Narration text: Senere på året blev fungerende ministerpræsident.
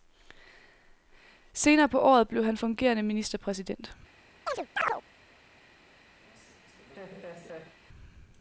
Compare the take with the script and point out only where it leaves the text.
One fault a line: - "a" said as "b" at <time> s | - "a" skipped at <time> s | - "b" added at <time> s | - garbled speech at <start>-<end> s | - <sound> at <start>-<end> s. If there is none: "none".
- "han" added at 2.5 s
- chirp at 4.5-5.0 s
- laugh at 6.2-7.8 s